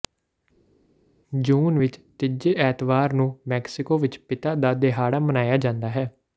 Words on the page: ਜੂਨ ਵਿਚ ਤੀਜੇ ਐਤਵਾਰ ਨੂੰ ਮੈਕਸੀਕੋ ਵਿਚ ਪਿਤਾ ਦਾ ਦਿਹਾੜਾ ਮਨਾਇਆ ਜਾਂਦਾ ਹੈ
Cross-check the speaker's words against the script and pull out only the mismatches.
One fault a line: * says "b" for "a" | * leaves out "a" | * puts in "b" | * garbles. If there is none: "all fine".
all fine